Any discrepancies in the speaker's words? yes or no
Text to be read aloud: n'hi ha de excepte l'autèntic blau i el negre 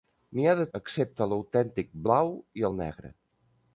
no